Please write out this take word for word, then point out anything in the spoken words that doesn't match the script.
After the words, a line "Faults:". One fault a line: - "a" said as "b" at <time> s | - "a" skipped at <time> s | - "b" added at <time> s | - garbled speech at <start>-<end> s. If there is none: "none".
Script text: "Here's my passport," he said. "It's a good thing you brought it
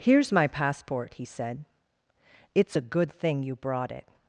"Here's my passport," he said. "It's a good thing you brought it
Faults:
none